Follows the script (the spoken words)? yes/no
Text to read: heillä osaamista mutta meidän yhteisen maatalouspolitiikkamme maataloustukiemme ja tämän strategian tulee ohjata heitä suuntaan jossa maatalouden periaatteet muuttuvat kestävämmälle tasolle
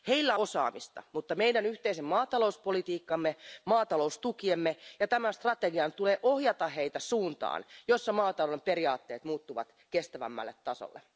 yes